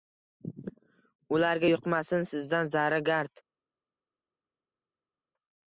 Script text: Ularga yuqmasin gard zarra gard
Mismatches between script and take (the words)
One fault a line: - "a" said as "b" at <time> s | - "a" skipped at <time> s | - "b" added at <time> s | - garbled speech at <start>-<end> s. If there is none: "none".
- "gard" said as "sizdan" at 2.3 s